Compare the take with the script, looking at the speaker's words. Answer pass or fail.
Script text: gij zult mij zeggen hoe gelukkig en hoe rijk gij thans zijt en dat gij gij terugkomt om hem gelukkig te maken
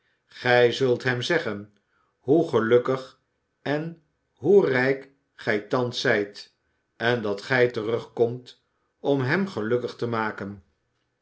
fail